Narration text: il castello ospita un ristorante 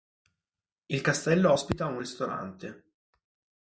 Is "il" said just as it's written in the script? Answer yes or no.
yes